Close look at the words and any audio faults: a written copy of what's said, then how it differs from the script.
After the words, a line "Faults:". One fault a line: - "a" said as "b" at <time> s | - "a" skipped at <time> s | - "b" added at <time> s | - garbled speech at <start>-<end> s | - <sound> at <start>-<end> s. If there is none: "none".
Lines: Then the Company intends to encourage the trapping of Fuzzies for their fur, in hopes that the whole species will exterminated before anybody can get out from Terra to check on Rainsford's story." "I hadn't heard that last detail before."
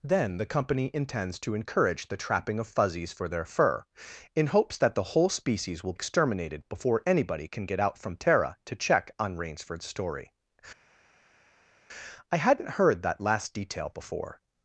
Then the Company intends to encourage the trapping of Fuzzies for their fur, in hopes that the whole species will exterminated before anybody can get out from Terra to check on Rainsford's story." "I hadn't heard that last detail before."
Faults:
none